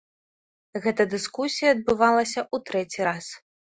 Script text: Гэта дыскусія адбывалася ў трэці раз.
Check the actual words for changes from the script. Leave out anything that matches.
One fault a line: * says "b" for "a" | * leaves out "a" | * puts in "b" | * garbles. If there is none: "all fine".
all fine